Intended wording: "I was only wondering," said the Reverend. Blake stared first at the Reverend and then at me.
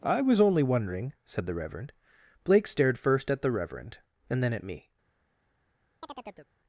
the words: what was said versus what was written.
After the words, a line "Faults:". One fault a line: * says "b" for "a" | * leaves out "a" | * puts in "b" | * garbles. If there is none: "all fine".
"I was only wondering," said the Reverend. Blake stared first at the Reverend and then at me.
Faults:
all fine